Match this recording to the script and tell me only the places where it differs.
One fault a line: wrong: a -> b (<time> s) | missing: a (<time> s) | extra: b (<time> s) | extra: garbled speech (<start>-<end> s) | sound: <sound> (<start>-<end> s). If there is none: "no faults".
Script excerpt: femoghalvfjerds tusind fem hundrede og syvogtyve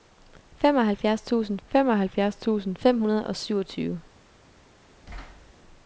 extra: femoghalvfjerds tusind (1.7 s)
sound: thud (5.0-5.5 s)